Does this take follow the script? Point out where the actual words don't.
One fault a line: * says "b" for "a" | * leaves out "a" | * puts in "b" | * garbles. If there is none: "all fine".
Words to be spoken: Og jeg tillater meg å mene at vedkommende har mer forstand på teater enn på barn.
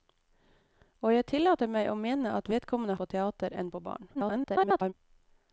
* leaves out "har mer forstand"
* garbles